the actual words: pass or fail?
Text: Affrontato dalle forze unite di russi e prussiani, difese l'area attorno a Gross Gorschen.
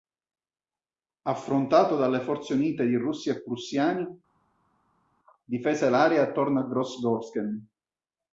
pass